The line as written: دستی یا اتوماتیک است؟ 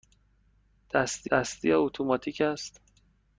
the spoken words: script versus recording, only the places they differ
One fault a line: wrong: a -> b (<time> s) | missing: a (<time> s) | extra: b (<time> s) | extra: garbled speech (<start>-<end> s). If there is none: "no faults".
extra: دستی (1.3 s)